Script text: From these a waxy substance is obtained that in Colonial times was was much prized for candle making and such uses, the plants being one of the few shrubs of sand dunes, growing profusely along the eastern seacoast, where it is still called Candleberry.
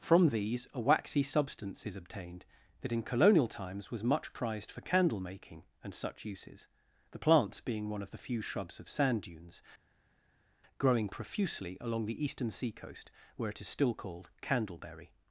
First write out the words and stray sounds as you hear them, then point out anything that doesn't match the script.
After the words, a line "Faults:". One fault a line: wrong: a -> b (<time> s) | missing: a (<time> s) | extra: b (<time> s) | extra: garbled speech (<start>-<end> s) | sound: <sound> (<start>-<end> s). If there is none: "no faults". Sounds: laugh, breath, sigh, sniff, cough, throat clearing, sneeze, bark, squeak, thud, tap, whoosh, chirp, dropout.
From these a waxy substance is obtained that in Colonial times was much prized for candle making and such uses, the plants being one of the few shrubs of sand dunes, growing profusely along the eastern seacoast, where it is still called Candleberry.
Faults:
missing: was (4.0 s)